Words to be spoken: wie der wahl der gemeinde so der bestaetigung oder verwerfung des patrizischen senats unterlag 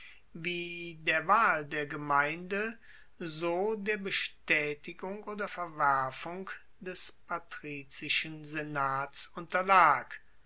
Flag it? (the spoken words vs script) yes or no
no